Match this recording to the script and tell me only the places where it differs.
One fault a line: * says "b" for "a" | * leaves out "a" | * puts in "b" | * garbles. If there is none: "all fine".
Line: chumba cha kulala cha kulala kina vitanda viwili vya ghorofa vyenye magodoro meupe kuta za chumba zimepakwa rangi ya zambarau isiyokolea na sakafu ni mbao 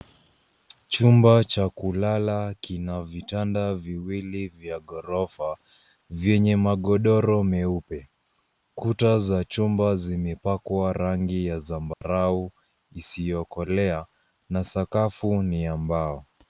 * leaves out "cha kulala"
* puts in "ya"